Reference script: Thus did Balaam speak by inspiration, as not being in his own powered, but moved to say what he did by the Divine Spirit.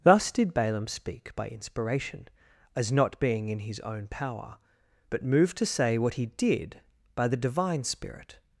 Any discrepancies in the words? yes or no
yes